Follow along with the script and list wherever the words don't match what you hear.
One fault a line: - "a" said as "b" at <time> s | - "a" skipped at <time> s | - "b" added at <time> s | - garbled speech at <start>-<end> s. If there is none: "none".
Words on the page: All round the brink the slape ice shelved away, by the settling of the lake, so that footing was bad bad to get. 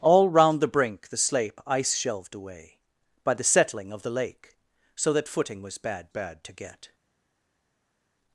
none